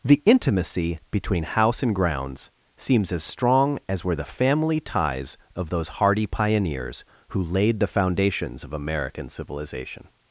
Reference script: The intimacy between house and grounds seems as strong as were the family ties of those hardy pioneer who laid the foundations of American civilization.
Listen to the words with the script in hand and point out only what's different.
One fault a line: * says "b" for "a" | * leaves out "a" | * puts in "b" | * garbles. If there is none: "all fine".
* says "pioneers" for "pioneer"